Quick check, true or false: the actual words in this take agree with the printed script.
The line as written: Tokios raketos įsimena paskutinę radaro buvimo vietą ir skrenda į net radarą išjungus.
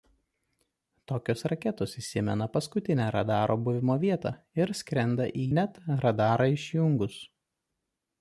true